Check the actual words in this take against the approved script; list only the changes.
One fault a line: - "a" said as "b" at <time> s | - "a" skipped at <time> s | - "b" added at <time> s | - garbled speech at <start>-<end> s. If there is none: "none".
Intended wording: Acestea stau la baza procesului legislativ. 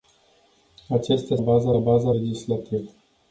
- "stau" said as "baza" at 1.4 s
- "procesului" skipped at 2.1 s